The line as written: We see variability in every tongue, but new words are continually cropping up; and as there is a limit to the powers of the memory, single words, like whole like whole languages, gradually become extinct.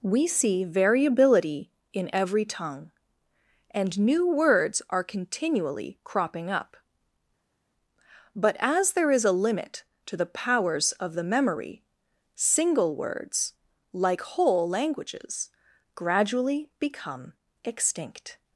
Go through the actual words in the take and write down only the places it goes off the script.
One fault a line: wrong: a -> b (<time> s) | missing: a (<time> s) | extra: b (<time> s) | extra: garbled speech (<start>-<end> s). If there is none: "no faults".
wrong: but -> and (3.7 s)
wrong: and -> but (8.3 s)
missing: like whole (14.7 s)